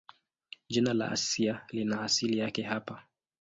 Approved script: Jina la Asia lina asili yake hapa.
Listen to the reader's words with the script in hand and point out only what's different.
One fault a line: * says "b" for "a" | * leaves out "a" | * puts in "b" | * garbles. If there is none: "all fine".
all fine